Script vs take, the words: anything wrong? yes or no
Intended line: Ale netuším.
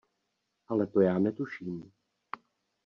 yes